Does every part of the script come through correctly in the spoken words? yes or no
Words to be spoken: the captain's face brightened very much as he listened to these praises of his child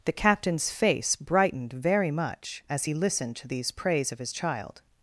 no